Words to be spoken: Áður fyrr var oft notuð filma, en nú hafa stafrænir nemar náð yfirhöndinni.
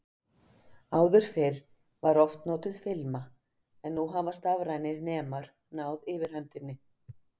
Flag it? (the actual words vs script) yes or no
no